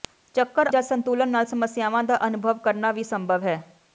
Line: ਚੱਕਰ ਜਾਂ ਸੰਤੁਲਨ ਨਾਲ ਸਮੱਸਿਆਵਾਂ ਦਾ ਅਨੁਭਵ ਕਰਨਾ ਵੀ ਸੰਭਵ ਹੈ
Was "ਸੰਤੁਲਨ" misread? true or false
false